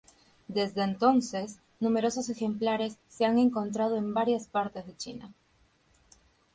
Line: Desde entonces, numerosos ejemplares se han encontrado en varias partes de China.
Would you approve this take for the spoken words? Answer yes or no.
yes